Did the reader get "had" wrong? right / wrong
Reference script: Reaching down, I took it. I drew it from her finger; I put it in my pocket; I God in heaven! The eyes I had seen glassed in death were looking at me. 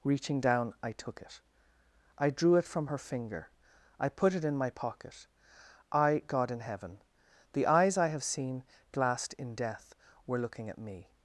wrong